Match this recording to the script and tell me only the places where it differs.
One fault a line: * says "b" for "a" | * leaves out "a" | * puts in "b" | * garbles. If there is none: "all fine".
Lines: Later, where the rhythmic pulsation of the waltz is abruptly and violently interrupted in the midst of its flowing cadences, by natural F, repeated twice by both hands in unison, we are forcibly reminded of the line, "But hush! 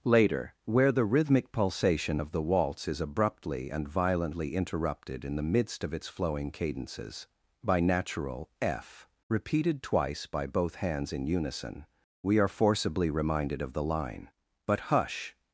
all fine